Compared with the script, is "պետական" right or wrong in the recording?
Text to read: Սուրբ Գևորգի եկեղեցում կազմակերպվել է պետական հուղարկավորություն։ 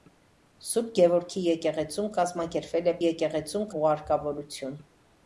wrong